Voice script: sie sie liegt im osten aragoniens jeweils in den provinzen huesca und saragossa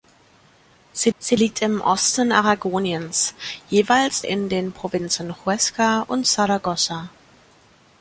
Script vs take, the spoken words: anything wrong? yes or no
no